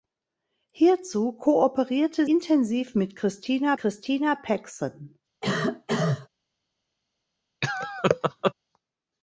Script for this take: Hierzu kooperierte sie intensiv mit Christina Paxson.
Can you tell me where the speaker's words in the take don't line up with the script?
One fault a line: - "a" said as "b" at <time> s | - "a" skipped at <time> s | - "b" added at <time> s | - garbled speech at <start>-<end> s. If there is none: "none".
- "sie" skipped at 2.2 s
- "Christina" added at 3.8 s